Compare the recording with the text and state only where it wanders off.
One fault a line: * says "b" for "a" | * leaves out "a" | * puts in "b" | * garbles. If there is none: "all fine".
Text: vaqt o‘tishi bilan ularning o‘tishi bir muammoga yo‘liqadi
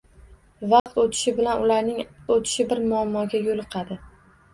all fine